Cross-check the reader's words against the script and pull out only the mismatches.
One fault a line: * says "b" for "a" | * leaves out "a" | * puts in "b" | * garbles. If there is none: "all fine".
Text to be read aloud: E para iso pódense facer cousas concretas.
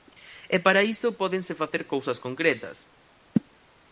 all fine